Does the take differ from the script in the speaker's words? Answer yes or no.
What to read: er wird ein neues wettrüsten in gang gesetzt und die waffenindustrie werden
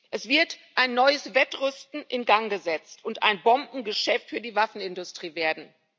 yes